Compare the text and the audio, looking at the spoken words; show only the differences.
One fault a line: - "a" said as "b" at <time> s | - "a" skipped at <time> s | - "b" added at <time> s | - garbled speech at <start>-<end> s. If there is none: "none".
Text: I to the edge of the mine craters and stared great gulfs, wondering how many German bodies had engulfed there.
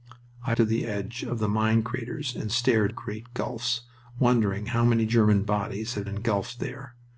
none